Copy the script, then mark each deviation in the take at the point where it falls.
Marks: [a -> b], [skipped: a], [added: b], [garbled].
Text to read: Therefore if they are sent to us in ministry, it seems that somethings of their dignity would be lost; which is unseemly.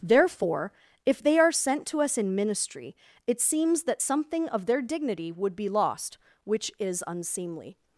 Therefore if they are sent to us in ministry, it seems that [somethings -> something] of their dignity would be lost; which is unseemly.